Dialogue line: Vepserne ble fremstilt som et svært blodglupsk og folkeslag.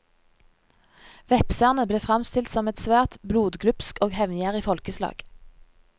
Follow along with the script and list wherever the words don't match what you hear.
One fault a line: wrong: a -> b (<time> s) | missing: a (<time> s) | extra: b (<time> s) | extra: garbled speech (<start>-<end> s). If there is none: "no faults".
extra: hevngjerrig (4.2 s)